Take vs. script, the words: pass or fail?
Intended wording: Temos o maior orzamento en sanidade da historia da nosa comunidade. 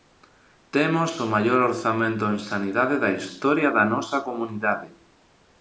pass